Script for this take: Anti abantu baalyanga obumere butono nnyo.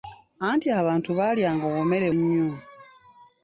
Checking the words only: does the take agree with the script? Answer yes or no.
no